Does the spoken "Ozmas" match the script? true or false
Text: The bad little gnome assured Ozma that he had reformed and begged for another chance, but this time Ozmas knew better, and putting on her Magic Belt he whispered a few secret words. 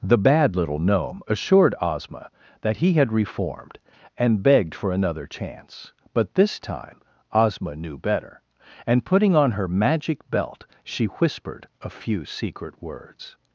false